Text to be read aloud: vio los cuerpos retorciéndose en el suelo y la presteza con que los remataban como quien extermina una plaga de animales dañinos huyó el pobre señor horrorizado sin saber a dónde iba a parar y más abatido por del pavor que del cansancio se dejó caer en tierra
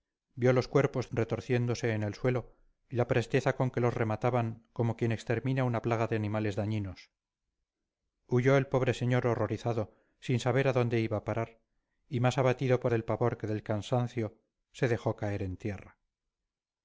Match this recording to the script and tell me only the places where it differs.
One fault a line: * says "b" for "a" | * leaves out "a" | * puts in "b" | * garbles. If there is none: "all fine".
all fine